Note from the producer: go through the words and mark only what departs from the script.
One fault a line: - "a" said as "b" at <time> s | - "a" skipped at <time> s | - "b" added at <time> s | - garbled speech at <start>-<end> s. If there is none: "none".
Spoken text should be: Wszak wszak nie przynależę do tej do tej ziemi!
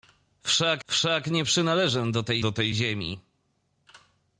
none